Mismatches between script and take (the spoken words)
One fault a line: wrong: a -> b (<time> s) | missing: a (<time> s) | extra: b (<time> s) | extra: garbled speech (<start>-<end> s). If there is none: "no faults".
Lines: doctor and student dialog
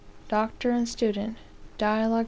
no faults